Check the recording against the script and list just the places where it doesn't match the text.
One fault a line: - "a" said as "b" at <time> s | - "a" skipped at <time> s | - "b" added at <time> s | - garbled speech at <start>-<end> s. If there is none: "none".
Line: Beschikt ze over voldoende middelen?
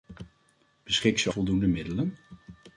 - "over" skipped at 1.3 s